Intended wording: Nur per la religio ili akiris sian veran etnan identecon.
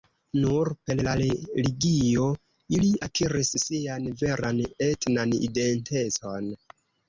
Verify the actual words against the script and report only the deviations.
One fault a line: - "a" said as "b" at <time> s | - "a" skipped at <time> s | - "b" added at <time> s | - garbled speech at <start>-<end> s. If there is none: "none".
none